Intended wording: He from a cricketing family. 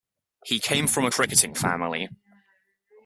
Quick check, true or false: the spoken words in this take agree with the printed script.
false